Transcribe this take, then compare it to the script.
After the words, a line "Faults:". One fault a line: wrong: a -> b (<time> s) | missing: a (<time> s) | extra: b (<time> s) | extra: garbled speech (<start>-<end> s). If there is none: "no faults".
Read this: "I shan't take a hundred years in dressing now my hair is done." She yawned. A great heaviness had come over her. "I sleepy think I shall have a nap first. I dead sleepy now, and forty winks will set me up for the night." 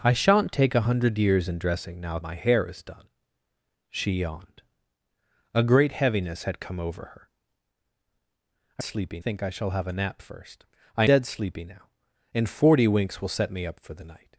"I shan't take a hundred years in dressing now my hair is done." She yawned. A great heaviness had come over her. "I sleepy think I shall have a nap first. I dead sleepy now, and forty winks will set me up for the night."
Faults:
no faults